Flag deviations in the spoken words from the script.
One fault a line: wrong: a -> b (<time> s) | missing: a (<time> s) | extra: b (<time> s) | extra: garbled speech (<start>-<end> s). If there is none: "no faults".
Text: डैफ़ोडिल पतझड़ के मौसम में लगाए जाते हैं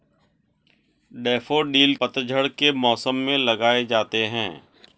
no faults